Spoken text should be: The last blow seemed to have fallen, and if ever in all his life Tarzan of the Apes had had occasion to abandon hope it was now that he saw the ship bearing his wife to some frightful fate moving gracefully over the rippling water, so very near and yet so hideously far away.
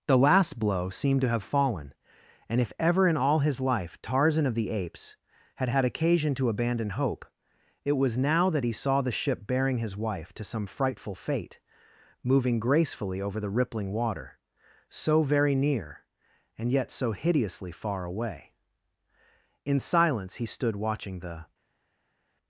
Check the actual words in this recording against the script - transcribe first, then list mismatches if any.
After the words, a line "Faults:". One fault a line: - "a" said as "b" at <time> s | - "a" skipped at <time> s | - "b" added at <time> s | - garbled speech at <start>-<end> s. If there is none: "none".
The last blow seemed to have fallen, and if ever in all his life Tarzan of the Apes had had occasion to abandon hope it was now that he saw the ship bearing his wife to some frightful fate moving gracefully over the rippling water, so very near and yet so hideously far away. In silence he stood watching the
Faults:
- "In silence he stood watching the" added at 19.6 s